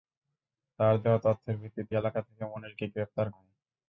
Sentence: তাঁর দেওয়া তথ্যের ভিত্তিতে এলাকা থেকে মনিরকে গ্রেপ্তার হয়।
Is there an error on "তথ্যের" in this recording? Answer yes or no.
no